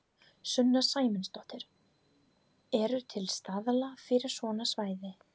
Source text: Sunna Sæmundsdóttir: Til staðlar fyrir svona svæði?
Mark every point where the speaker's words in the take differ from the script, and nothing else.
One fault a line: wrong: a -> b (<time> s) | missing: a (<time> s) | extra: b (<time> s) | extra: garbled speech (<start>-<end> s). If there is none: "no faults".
extra: Eru (2.8 s)